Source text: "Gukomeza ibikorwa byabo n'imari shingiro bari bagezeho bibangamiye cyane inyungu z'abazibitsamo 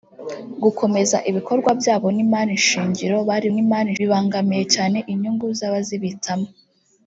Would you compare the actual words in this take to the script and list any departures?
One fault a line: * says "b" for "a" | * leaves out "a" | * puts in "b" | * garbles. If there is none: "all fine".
* says "n'imari" for "bagezeho"